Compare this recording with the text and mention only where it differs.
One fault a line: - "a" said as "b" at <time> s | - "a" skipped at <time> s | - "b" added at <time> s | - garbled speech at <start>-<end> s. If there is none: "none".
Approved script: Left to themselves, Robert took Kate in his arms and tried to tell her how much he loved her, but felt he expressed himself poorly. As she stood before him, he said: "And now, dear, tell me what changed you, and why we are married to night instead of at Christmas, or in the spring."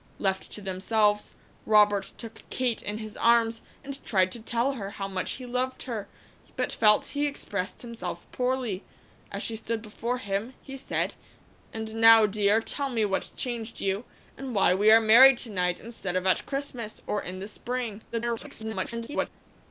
- garbled speech at 18.1-19.3 s